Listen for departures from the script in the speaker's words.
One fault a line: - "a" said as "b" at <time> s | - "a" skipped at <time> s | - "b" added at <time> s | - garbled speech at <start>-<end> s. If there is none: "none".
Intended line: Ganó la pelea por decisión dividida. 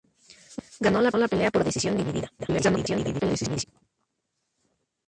- "la" added at 1.2 s
- garbled speech at 2.4-3.6 s